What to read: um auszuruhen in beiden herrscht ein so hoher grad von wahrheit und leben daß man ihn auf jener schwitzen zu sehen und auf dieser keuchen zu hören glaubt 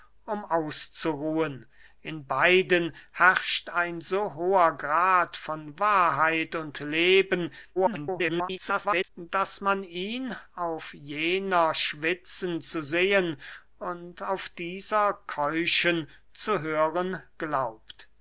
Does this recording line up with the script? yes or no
no